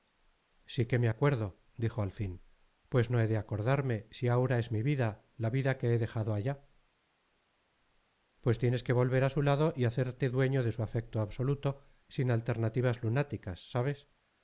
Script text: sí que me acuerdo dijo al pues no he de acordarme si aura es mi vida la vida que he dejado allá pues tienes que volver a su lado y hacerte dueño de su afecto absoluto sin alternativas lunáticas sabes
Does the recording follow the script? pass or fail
fail